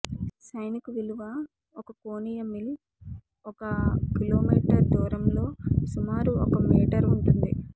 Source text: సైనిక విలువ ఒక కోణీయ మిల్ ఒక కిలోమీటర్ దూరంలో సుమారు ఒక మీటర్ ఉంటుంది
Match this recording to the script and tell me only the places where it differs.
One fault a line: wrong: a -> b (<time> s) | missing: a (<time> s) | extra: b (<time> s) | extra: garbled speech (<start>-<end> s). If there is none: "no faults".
no faults